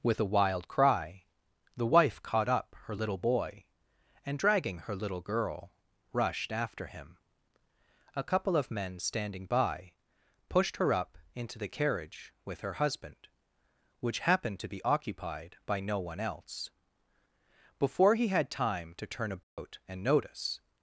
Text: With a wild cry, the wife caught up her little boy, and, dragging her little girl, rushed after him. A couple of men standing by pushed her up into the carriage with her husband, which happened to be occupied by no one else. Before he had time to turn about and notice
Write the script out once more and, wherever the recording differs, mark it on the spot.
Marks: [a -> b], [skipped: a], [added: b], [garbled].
With a wild cry, the wife caught up her little boy, and, dragging her little girl, rushed after him. A couple of men standing by pushed her up into the carriage with her husband, which happened to be occupied by no one else. Before he had time to turn about and notice